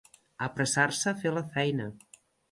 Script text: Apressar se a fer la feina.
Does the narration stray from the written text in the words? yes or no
no